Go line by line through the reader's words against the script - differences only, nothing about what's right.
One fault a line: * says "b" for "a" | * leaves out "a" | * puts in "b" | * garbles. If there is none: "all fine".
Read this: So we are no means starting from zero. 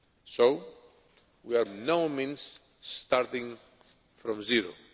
all fine